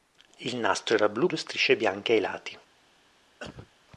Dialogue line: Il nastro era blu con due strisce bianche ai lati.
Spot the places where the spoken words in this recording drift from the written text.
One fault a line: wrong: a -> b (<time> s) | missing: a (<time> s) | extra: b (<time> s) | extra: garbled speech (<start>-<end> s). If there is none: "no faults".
missing: con (1.3 s)